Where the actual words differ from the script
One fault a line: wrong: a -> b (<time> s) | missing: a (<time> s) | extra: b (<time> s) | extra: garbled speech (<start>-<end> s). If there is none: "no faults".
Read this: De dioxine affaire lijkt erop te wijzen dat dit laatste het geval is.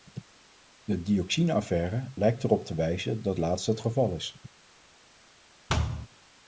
missing: dit (3.4 s)